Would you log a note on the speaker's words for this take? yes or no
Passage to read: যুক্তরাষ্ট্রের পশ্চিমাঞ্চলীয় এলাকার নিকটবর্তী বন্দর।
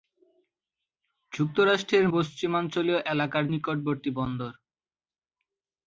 no